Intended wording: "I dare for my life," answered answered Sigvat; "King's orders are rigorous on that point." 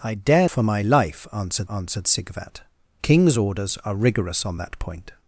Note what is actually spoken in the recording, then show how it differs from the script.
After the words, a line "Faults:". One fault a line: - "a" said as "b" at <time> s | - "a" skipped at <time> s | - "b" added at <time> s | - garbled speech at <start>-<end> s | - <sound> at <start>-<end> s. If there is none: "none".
"I dare for my life," answered answered Sigvat; "King's orders are rigorous on that point."
Faults:
none